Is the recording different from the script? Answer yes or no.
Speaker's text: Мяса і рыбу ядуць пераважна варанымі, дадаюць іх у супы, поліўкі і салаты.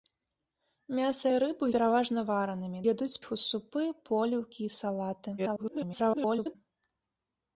yes